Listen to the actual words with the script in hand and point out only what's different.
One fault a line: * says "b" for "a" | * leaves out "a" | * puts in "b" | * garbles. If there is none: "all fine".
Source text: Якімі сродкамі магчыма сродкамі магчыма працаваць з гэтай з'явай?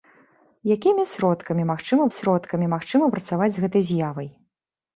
all fine